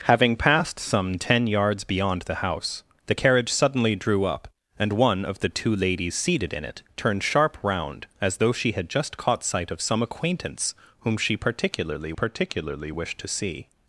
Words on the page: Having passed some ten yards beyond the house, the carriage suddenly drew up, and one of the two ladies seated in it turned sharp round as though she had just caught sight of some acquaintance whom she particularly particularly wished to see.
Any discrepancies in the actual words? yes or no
no